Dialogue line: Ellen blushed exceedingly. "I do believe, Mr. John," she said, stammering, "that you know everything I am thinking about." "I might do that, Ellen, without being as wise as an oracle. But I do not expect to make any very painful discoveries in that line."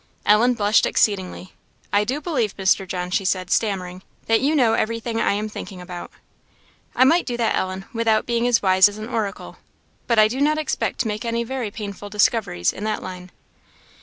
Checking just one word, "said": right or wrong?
right